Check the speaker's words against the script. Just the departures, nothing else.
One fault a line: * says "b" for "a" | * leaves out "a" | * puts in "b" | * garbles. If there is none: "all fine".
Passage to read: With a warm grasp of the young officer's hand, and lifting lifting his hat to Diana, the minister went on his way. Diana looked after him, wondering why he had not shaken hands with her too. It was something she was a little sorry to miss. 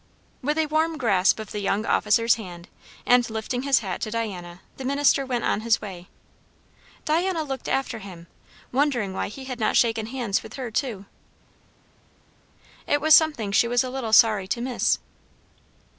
* leaves out "lifting"